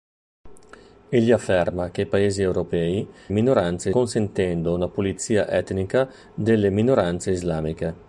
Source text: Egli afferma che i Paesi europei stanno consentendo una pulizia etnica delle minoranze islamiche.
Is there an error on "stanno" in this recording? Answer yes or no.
yes